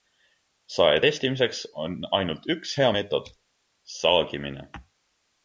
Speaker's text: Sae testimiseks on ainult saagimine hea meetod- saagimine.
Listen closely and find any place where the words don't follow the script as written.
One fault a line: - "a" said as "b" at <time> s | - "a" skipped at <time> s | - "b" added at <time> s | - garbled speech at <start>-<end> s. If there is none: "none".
- "saagimine" said as "üks" at 2.6 s